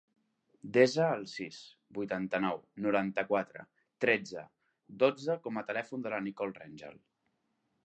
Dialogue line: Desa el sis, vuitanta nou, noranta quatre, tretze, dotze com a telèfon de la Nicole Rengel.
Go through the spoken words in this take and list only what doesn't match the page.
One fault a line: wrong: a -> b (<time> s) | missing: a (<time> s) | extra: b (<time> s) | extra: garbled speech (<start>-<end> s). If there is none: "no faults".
no faults